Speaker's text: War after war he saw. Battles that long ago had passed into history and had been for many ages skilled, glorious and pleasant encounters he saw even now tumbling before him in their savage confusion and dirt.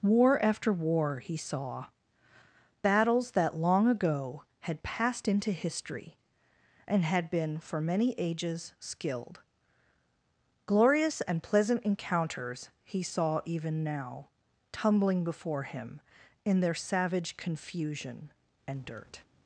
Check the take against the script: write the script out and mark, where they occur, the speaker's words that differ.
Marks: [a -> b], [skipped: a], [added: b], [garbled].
War after war he saw. Battles that long ago had passed into history and had been for many ages skilled, glorious and pleasant encounters he saw even now tumbling before him in their savage confusion and dirt.